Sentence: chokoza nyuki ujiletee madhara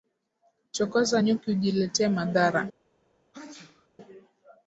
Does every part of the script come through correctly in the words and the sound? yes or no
no